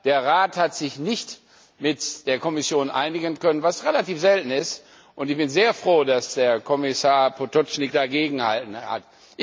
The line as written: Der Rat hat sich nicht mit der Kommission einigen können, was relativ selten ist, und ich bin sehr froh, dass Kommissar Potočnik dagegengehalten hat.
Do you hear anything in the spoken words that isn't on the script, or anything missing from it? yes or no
no